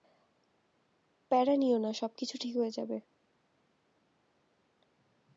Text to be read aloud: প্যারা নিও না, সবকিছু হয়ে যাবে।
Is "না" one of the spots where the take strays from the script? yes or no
no